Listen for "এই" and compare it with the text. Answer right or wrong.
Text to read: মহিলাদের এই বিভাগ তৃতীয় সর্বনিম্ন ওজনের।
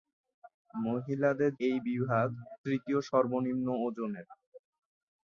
right